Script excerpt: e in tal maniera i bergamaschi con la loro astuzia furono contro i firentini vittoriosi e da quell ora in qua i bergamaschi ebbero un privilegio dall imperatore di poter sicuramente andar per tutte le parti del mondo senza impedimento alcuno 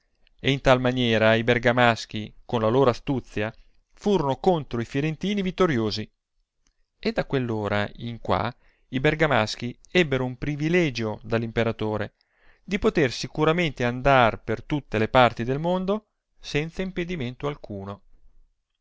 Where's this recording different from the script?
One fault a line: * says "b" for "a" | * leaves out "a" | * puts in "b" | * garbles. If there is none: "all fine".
all fine